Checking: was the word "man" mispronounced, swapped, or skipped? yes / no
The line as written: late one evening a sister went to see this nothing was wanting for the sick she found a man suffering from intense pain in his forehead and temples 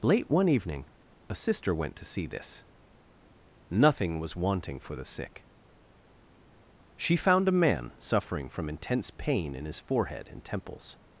no